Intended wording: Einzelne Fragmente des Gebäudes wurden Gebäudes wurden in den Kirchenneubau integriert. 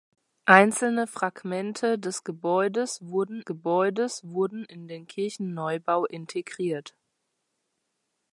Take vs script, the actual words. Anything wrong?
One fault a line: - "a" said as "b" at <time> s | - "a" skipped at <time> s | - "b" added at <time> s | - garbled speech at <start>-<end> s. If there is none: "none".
none